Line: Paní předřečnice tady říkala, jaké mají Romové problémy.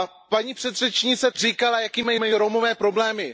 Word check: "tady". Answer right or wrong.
wrong